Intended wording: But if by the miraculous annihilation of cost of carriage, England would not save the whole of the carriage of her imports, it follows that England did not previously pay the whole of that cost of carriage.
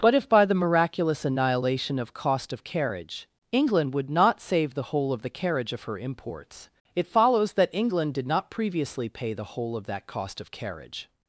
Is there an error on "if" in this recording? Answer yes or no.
no